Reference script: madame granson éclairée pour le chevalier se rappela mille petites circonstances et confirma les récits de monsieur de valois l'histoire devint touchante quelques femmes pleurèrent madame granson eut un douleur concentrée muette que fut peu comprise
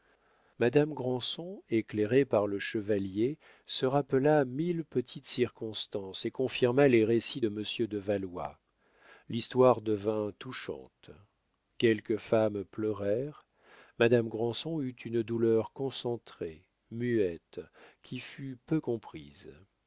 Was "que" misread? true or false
true